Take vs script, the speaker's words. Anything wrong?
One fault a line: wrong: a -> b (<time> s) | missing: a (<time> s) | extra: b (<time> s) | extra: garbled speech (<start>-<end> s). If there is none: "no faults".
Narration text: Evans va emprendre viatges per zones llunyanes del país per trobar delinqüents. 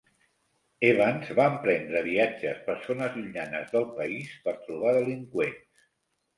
no faults